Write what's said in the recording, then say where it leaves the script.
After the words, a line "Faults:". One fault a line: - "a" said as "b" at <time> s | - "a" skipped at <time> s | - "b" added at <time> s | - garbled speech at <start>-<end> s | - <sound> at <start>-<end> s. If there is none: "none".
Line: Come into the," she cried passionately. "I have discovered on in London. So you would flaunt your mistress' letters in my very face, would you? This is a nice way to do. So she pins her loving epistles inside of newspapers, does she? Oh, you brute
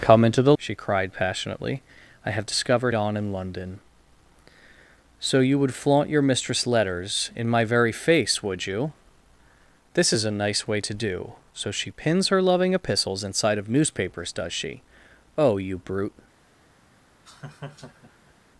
Come into the," she cried passionately. "I have discovered on in London. So you would flaunt your mistress' letters in my very face, would you? This is a nice way to do. So she pins her loving epistles inside of newspapers, does she? Oh, you brute
Faults:
- laugh at 17.2-18.3 s